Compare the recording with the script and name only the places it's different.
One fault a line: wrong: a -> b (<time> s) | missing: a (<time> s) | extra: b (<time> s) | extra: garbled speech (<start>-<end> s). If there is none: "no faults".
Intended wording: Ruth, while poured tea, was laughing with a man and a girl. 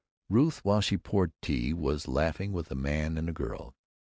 extra: she (0.8 s)